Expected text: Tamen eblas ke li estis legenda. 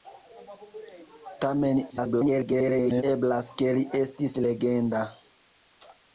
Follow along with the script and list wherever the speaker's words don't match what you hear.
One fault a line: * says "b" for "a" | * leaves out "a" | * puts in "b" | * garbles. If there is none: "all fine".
* garbles